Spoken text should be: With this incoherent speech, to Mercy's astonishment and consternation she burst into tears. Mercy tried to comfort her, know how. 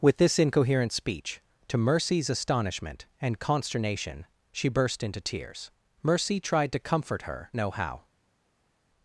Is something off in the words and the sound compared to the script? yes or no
no